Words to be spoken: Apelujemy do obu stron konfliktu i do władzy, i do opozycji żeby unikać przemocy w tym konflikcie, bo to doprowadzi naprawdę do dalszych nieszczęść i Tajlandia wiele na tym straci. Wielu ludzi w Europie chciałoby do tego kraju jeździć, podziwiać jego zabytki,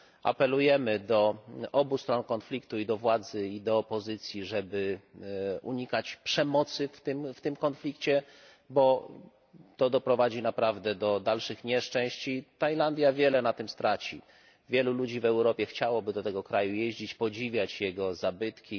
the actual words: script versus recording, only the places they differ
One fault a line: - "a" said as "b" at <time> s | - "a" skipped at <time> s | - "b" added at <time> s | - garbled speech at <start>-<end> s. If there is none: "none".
none